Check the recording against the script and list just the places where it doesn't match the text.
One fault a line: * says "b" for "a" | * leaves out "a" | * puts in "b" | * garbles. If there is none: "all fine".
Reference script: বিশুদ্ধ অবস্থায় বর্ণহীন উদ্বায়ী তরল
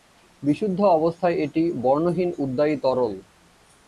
* puts in "এটি"